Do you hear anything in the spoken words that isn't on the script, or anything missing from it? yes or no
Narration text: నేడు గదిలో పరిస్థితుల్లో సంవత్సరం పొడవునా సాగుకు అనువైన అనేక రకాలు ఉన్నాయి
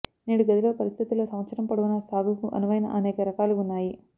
no